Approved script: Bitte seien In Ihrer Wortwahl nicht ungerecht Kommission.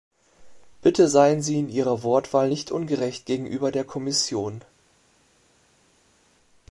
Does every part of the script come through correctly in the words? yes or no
no